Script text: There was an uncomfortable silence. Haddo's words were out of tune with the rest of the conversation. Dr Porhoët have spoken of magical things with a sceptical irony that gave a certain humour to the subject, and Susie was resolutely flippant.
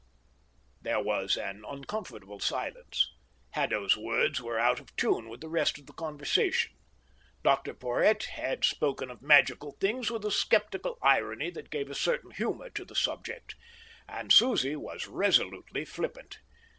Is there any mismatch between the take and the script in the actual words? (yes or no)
yes